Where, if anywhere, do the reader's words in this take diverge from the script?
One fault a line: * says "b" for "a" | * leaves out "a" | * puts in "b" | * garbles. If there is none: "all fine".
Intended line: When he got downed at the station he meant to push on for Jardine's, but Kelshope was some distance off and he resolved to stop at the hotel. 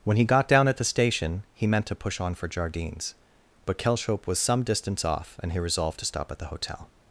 * says "down" for "downed"